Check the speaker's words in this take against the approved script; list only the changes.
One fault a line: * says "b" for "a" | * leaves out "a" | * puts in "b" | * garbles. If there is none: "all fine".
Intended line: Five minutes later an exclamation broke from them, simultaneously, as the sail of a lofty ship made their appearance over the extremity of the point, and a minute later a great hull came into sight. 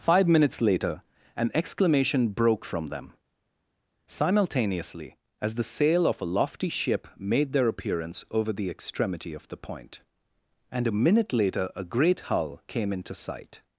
all fine